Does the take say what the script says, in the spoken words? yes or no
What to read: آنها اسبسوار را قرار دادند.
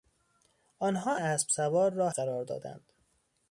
yes